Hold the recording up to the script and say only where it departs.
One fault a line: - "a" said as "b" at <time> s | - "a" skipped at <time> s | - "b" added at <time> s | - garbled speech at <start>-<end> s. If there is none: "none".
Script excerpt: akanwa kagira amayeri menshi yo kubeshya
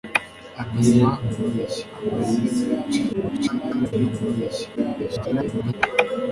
- "kagira" said as "kubeshya" at 1.3 s
- garbled speech at 3.1-3.9 s
- garbled speech at 4.8-5.7 s